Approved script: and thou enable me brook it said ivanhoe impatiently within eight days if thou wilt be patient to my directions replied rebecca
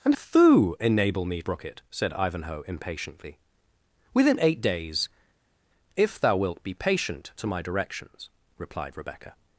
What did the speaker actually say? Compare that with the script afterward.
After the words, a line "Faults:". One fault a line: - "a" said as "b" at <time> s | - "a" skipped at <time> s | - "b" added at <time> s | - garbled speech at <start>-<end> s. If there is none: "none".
and thou enable me brook it said ivanhoe impatiently within eight days if thou wilt be patient to my directions replied rebecca
Faults:
none